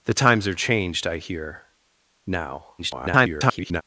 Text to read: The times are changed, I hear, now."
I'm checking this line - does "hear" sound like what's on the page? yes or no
yes